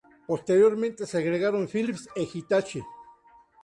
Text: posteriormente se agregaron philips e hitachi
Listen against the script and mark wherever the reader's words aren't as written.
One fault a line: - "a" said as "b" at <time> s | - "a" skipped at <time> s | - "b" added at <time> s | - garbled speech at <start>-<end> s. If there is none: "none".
none